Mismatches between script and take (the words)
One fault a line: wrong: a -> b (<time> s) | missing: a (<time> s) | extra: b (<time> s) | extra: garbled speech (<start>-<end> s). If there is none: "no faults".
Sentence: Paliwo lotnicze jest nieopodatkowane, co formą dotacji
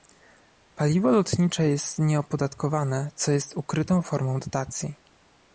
extra: jest ukrytą (3.3 s)